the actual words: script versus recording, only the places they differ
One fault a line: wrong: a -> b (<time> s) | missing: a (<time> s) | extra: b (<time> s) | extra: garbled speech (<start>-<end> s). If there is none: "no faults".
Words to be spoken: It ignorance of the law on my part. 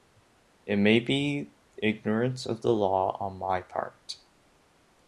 extra: may be (0.8 s)